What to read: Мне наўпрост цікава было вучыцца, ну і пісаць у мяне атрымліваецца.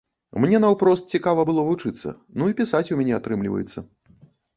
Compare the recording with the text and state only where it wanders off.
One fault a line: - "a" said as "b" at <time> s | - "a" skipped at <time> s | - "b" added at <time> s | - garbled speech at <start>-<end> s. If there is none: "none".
none